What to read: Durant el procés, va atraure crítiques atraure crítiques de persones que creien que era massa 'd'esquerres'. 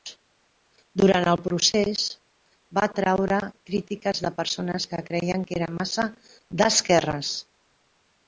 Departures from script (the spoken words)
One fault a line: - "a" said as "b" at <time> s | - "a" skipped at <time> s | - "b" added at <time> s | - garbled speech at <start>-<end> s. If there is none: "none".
- "atraure crítiques" skipped at 4.2 s